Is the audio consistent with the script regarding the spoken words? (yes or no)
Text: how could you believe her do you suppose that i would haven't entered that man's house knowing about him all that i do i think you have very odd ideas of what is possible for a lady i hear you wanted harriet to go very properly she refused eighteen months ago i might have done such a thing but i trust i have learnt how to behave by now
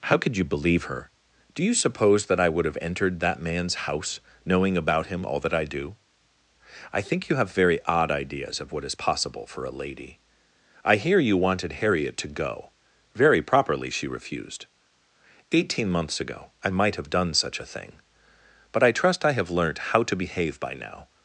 no